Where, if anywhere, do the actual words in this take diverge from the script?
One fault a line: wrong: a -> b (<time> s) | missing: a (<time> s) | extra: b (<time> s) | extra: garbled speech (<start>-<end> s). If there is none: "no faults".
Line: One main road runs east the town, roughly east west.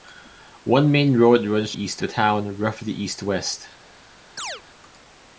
no faults